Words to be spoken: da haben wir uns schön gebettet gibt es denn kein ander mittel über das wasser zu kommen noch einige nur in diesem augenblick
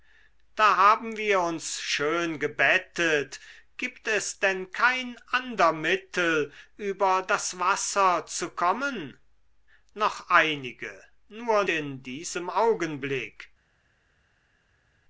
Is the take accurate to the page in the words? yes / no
yes